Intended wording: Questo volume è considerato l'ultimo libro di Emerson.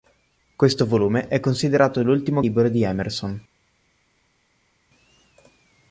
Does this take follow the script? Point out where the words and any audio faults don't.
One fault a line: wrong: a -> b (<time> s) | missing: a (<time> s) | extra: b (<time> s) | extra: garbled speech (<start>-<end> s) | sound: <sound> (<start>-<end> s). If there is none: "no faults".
no faults